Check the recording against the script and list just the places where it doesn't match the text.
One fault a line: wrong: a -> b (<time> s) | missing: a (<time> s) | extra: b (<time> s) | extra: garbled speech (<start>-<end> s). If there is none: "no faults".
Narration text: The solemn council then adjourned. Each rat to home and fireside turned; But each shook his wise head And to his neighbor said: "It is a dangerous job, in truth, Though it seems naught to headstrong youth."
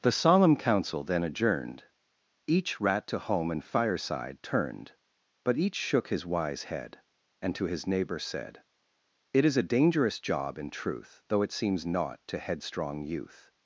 no faults